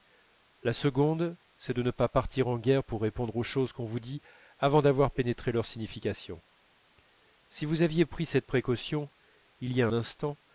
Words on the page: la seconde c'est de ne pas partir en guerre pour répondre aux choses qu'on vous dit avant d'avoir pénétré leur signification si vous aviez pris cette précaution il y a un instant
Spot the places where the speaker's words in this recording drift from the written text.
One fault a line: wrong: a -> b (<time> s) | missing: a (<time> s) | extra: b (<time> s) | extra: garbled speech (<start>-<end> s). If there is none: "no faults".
missing: un (9.9 s)